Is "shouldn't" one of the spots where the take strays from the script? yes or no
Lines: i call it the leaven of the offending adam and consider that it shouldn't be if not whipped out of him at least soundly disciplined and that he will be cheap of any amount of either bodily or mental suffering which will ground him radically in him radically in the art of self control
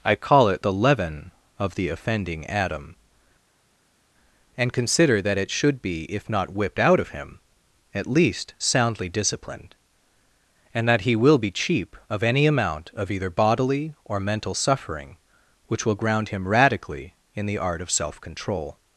yes